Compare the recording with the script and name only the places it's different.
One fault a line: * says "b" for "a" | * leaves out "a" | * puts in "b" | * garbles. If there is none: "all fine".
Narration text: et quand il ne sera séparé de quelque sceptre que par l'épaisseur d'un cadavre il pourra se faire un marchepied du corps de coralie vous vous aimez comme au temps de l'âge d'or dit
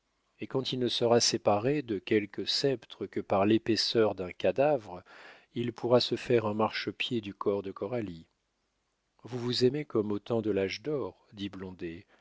all fine